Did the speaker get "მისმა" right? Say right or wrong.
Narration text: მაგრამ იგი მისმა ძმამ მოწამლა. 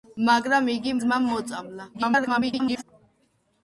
wrong